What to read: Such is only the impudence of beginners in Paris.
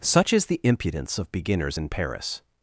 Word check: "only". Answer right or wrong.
wrong